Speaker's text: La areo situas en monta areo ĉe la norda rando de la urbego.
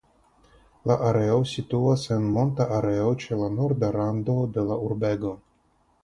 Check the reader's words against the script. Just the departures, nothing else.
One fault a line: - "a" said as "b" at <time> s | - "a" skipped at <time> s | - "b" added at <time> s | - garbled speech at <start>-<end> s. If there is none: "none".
none